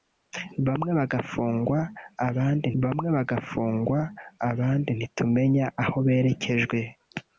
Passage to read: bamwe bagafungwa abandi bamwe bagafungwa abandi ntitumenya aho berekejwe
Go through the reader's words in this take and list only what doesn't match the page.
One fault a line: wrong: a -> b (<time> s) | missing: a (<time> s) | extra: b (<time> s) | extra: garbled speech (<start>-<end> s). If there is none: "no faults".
no faults